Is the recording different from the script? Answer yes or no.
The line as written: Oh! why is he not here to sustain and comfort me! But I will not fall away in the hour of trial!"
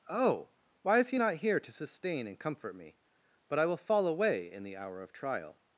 yes